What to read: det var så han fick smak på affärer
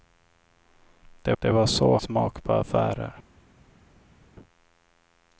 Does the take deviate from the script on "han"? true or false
true